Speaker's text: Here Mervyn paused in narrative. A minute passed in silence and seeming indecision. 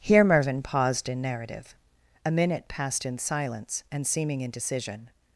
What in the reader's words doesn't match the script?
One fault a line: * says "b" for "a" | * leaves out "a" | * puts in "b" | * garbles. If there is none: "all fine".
all fine